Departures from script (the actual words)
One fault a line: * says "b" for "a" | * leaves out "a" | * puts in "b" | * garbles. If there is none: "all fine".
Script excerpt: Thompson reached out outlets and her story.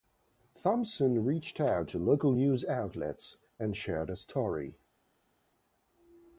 * puts in "to local news"
* puts in "shared"